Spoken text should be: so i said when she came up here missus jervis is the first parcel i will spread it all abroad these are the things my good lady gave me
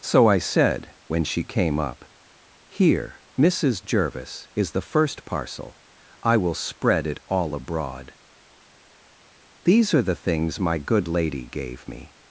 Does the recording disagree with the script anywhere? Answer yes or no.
no